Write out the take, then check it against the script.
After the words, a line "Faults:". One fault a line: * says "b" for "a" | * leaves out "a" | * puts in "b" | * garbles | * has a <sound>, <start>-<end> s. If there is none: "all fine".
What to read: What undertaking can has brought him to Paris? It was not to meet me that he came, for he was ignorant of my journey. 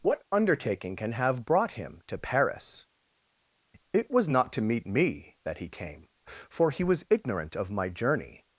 What undertaking can have brought him to Paris? It was not to meet me that he came, for he was ignorant of my journey.
Faults:
* says "have" for "has"